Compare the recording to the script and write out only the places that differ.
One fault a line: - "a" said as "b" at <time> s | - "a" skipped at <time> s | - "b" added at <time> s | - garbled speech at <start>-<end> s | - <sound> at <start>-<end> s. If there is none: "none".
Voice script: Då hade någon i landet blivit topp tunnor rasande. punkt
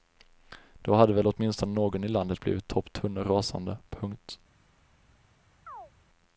- "väl åtminstone" added at 1.1 s
- chirp at 5.7-5.9 s